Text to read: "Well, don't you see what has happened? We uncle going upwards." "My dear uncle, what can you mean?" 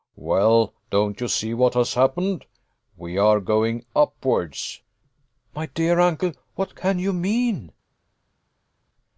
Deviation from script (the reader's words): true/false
true